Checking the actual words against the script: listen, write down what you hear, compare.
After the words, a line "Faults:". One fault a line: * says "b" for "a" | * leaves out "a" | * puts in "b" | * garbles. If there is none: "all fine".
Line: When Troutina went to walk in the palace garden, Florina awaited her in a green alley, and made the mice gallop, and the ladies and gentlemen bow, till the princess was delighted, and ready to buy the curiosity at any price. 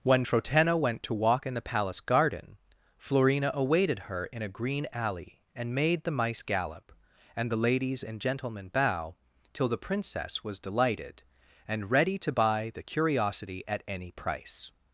When Troutina went to walk in the palace garden, Florina awaited her in a green alley, and made the mice gallop, and the ladies and gentlemen bow, till the princess was delighted, and ready to buy the curiosity at any price.
Faults:
all fine